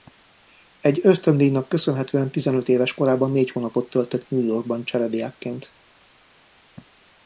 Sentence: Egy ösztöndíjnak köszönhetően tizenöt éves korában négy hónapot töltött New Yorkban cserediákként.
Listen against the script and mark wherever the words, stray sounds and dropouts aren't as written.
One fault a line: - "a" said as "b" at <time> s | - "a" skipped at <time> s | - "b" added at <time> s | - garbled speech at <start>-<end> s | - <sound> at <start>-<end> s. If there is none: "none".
none